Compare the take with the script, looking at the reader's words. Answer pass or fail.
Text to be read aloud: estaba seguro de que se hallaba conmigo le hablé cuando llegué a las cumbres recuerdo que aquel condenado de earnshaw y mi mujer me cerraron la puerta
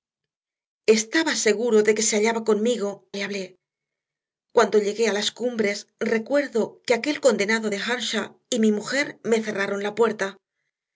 pass